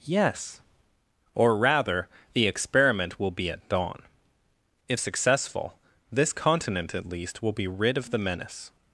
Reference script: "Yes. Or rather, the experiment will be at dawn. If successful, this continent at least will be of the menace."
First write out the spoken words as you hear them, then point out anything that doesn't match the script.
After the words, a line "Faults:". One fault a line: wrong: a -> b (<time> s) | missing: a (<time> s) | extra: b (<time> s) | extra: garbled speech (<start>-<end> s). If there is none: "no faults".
"Yes. Or rather, the experiment will be at dawn. If successful, this continent at least will be rid of the menace."
Faults:
extra: rid (7.7 s)